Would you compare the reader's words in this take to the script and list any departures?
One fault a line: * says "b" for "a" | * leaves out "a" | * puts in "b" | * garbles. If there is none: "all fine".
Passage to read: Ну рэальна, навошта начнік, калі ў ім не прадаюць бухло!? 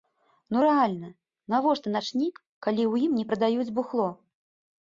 all fine